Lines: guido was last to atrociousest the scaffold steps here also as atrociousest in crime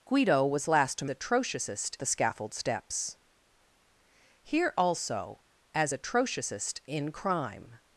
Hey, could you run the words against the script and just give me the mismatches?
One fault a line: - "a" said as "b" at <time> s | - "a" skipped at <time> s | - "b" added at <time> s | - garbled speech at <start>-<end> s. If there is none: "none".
none